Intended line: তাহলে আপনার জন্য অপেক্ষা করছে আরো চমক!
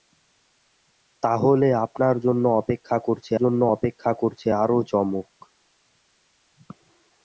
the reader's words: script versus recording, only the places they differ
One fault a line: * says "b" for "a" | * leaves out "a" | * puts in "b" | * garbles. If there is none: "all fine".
* puts in "জন্য অপেক্ষা করছে"